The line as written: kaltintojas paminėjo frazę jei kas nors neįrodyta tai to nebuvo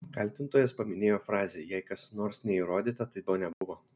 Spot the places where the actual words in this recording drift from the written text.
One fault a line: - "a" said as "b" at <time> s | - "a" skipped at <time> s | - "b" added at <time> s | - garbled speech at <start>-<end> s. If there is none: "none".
none